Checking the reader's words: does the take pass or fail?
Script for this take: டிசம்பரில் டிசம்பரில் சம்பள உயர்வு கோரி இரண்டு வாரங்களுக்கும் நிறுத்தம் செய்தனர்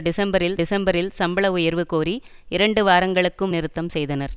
pass